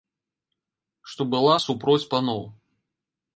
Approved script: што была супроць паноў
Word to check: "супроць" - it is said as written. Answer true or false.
true